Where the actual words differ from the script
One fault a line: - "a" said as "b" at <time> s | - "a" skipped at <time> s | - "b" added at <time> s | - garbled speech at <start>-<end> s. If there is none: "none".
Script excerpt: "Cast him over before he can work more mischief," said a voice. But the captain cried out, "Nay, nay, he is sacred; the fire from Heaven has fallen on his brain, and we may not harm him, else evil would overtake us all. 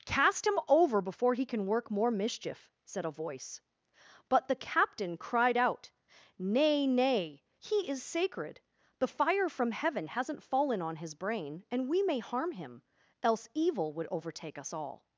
- "has" said as "hasn't" at 10.1 s
- "not" skipped at 12.2 s